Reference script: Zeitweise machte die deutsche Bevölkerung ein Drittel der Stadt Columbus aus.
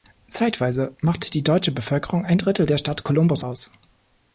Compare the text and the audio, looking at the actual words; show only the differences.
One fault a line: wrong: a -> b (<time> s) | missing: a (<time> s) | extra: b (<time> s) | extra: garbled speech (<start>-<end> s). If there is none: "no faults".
no faults